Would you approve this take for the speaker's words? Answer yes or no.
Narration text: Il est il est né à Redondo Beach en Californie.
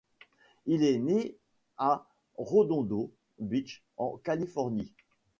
no